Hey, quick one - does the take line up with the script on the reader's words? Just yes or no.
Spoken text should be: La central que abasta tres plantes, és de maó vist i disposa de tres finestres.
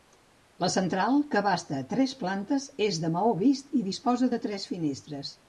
yes